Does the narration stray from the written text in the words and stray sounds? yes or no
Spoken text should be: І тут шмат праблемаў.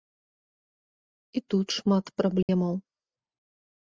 yes